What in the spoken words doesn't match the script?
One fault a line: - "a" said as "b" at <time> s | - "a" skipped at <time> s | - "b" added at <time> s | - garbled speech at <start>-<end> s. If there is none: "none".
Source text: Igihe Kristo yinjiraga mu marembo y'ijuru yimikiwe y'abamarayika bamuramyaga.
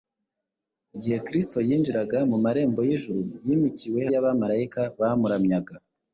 none